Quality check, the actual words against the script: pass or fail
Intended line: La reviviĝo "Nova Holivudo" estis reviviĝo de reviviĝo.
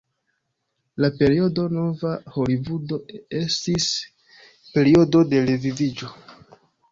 fail